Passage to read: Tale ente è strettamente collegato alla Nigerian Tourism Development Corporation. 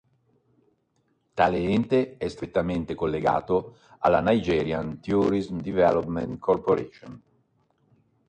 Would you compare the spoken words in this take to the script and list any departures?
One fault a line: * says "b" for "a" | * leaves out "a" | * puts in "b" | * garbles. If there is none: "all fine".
all fine